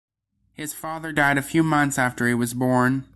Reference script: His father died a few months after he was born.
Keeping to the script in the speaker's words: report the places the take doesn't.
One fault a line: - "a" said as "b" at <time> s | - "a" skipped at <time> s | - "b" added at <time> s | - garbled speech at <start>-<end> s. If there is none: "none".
none